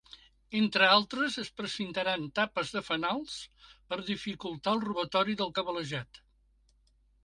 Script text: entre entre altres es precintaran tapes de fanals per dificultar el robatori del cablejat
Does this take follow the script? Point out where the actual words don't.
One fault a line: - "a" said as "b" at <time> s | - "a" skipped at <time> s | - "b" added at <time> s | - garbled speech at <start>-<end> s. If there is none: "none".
- "entre" skipped at 0.9 s